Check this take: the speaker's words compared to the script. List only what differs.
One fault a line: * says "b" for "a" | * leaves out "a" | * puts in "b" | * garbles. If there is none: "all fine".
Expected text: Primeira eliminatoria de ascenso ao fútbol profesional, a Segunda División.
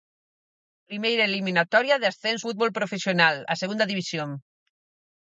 * leaves out "ao"